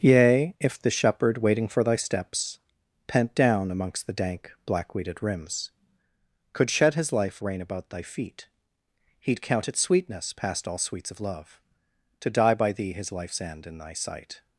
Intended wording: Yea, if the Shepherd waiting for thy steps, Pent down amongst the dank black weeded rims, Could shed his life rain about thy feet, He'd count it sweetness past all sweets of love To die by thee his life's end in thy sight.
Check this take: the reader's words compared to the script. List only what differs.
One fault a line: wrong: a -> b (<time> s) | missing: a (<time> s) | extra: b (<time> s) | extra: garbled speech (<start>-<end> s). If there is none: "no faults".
no faults